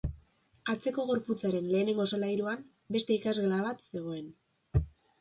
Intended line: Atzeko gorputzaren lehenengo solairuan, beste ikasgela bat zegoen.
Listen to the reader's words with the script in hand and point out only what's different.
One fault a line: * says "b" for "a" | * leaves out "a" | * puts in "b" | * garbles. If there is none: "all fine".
all fine